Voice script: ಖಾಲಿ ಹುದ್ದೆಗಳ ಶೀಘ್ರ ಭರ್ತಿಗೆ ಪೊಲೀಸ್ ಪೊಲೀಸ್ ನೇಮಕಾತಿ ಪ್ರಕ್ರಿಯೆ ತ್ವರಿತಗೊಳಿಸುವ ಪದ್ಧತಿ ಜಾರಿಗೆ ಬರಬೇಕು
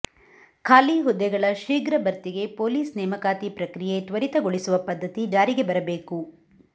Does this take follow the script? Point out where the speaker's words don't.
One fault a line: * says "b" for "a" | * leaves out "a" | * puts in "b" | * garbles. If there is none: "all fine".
* leaves out "ಪೊಲೀಸ್"